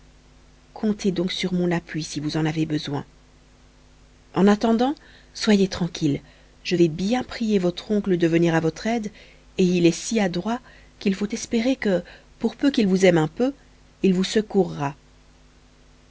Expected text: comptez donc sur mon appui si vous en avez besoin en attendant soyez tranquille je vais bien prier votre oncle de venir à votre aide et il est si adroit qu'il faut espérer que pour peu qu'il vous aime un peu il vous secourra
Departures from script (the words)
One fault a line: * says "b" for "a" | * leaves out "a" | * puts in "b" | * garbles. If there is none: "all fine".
all fine